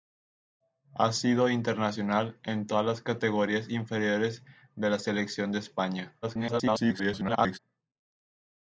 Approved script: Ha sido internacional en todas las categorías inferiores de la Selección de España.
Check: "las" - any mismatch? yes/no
no